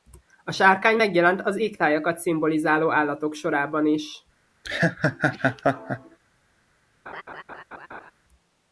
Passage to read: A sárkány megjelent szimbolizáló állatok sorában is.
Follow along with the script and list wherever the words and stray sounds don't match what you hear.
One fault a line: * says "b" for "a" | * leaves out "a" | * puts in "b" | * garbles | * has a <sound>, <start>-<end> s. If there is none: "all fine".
* puts in "az égtájakat"
* has a laugh, 4.6-6.2 s
* has a laugh, 7.1-8.1 s